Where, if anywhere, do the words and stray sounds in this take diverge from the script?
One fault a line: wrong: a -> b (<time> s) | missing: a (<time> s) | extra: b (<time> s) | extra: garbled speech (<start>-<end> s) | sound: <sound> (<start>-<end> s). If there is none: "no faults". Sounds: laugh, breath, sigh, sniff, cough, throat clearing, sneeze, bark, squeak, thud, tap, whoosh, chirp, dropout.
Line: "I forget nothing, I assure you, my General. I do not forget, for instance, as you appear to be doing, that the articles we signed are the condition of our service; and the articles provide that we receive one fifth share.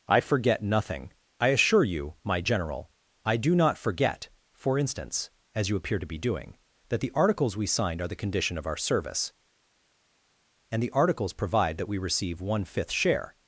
no faults